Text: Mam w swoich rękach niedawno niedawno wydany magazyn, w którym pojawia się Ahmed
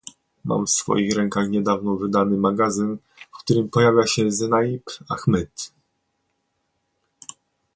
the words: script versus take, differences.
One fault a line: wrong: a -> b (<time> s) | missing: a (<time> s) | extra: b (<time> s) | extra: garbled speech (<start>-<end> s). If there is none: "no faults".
missing: niedawno (1.9 s)
extra: Zenaib (4.3 s)